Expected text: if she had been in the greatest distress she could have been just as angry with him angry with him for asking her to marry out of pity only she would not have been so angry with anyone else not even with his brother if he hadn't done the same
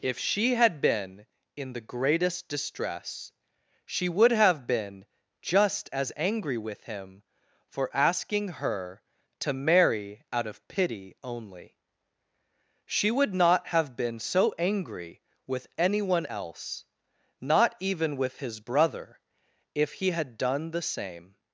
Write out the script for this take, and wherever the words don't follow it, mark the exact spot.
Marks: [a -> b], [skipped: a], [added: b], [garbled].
if she had been in the greatest distress she [could -> would] have been just as angry with him [skipped: angry with him] for asking her to marry out of pity only she would not have been so angry with anyone else not even with his brother if he [hadn't -> had] done the same